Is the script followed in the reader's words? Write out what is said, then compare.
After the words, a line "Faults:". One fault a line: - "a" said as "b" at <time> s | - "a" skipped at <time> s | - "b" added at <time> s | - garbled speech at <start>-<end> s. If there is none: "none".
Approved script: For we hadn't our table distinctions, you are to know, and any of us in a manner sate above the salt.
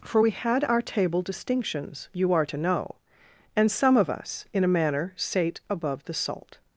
For we had our table distinctions, you are to know, and some of us in a manner sate above the salt.
Faults:
- "hadn't" said as "had" at 0.3 s
- "any" said as "some" at 3.7 s